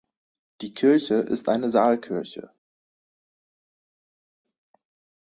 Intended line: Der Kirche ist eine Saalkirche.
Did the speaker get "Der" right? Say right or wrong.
wrong